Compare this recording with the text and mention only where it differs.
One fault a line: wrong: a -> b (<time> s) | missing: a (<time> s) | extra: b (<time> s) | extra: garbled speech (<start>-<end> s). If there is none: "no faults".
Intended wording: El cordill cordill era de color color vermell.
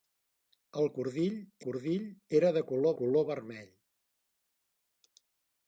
no faults